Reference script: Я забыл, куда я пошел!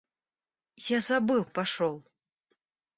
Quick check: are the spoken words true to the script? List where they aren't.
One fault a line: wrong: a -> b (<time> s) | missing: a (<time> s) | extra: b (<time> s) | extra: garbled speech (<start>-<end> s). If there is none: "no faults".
missing: куда (1.4 s)